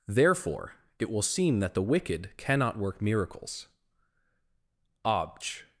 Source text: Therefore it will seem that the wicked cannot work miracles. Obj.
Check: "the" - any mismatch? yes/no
no